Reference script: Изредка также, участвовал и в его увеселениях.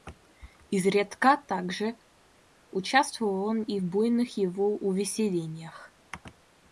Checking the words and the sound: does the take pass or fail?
fail